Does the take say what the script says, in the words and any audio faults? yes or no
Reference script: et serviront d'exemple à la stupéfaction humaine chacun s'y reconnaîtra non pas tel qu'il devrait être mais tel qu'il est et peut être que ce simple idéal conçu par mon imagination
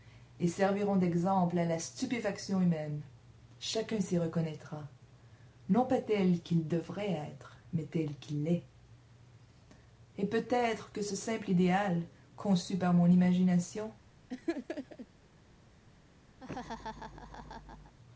no